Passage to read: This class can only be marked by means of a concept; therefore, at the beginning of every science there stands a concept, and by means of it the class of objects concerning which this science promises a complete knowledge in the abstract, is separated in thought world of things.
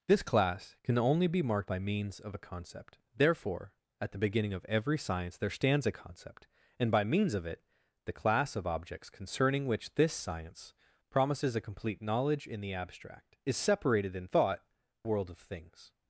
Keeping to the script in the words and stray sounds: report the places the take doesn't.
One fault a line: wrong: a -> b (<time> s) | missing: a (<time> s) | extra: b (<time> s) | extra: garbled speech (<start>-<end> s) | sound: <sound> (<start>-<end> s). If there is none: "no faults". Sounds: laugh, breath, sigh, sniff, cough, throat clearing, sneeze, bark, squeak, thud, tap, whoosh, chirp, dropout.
no faults